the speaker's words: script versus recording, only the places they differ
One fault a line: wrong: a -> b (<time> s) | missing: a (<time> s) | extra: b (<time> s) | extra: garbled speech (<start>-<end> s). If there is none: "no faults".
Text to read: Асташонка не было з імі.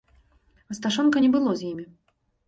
no faults